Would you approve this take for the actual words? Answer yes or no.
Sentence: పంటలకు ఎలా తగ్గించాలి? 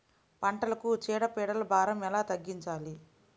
no